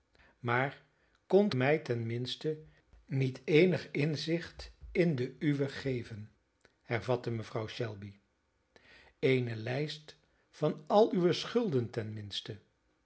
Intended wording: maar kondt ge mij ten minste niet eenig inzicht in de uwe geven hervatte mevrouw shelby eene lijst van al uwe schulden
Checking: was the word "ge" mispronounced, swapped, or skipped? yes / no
yes